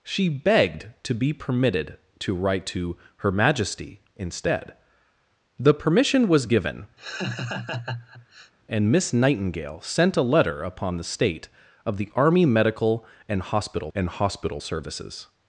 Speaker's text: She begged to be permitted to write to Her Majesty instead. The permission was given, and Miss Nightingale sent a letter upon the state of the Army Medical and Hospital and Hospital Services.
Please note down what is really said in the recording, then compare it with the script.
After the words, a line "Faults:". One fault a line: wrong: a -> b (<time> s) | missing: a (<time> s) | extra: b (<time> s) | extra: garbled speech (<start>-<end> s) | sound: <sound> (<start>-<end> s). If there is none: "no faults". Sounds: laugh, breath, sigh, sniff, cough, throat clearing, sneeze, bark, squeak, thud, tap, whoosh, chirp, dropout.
She begged to be permitted to write to Her Majesty instead. The permission was given, and Miss Nightingale sent a letter upon the state of the Army Medical and Hospital and Hospital Services.
Faults:
sound: laugh (7.0-8.5 s)